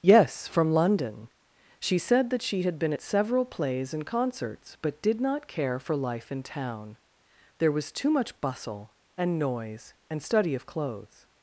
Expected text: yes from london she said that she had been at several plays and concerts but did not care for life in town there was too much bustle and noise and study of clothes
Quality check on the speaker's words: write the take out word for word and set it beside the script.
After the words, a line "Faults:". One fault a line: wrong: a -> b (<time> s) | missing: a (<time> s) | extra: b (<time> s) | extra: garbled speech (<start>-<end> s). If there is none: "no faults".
yes from london she said that she had been at several plays and concerts but did not care for life in town there was too much bustle and noise and study of clothes
Faults:
no faults